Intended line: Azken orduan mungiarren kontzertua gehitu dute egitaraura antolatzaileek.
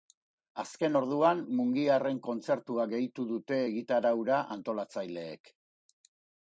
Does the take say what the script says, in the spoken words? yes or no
yes